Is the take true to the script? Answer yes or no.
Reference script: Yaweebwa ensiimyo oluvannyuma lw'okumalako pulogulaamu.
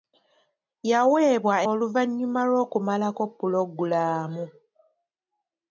no